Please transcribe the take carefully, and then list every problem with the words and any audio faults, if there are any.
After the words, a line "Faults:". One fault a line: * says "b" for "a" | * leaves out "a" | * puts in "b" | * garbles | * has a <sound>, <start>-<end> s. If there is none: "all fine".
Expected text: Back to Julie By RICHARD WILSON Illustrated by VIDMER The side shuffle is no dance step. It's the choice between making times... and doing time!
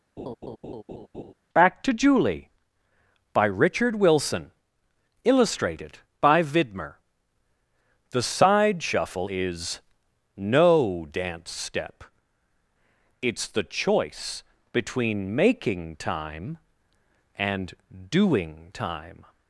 Back to Julie By RICHARD WILSON Illustrated by VIDMER The side shuffle is no dance step. It's the choice between making time... and doing time!
Faults:
* has a laugh, 0.2-1.3 s
* says "time" for "times"